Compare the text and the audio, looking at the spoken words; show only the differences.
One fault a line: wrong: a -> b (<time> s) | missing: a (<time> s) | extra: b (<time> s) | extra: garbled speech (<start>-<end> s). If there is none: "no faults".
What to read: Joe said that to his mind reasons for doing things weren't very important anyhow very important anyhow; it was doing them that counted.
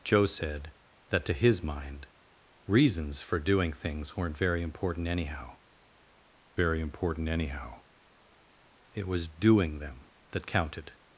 no faults